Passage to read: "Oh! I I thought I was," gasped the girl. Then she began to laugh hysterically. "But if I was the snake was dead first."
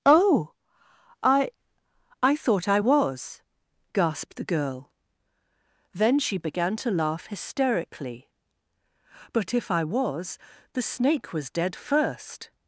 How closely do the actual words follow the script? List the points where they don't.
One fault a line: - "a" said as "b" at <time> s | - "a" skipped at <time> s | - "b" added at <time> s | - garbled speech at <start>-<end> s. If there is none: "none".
none